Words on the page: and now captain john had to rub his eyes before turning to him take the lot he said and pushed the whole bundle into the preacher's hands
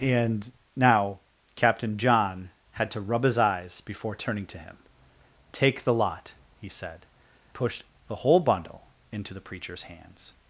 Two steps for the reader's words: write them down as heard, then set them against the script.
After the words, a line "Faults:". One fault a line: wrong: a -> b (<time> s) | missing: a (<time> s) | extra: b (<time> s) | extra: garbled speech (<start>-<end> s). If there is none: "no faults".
and now captain john had to rub his eyes before turning to him take the lot he said pushed the whole bundle into the preacher's hands
Faults:
missing: and (7.0 s)